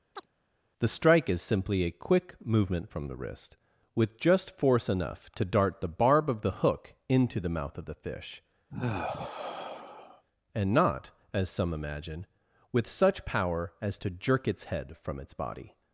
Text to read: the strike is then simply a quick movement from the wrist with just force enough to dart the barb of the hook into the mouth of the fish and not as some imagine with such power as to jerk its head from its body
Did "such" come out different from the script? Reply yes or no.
no